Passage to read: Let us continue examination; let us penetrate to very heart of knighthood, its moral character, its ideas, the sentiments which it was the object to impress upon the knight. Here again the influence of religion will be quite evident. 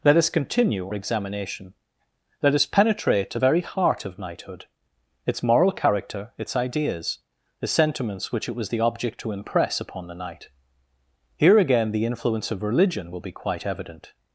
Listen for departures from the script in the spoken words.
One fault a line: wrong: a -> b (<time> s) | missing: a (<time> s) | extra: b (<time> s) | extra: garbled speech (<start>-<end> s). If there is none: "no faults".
no faults